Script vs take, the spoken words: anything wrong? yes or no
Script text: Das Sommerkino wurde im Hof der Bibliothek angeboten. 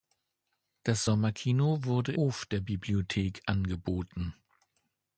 yes